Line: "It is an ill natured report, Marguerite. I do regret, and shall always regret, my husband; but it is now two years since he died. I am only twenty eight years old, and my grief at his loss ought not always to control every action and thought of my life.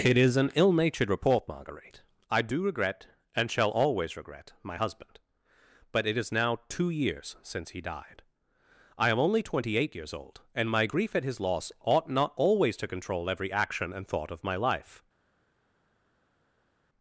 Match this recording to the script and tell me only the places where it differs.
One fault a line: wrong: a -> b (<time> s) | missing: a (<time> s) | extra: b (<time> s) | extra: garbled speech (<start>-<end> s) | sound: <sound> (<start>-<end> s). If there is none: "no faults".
no faults